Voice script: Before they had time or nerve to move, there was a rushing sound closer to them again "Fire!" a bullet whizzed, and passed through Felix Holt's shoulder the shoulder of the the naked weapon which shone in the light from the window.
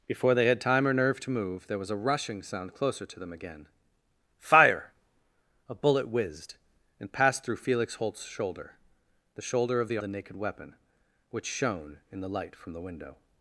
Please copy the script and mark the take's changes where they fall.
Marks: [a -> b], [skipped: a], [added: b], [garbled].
Before they had time or nerve to move, there was a rushing sound closer to them again "Fire!" a bullet whizzed, and passed through Felix Holt's shoulder the shoulder of the the naked weapon which shone in the light from the window.